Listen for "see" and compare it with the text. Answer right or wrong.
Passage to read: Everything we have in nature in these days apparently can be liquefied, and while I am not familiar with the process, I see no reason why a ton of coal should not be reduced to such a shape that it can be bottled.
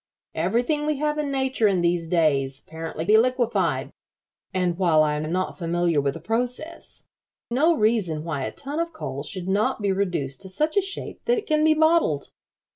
wrong